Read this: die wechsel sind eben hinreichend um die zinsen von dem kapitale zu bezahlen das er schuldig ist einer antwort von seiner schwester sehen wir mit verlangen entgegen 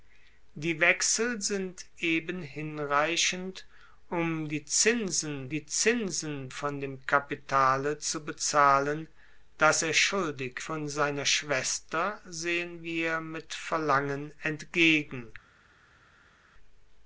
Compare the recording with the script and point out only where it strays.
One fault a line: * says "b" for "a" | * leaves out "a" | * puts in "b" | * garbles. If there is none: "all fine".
* puts in "die zinsen"
* leaves out "ist einer antwort"